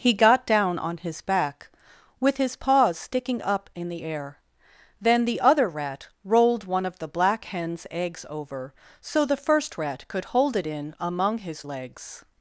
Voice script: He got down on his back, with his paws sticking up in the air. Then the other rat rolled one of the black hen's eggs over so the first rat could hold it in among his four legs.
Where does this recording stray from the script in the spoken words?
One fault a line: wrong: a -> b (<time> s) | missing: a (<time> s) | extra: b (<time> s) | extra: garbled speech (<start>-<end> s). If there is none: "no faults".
missing: four (11.6 s)